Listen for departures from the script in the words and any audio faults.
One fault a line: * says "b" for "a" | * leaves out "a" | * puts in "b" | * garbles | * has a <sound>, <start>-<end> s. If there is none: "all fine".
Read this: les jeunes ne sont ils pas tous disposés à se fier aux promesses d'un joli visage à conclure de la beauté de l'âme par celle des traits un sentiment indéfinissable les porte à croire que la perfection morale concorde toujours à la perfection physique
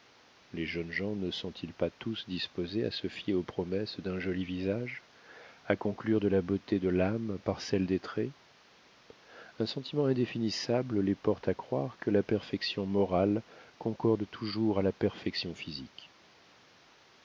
* puts in "gens"